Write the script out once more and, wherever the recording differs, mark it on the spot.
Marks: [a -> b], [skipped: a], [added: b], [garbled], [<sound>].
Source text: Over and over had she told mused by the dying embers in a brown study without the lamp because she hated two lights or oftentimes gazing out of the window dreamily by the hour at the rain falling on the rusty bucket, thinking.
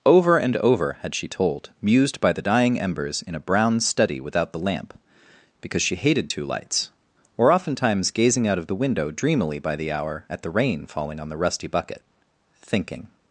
Over and over had she told mused by the dying embers in a brown study without the lamp because she hated two lights or oftentimes gazing out of the window dreamily by the hour at the rain falling on the rusty bucket, thinking.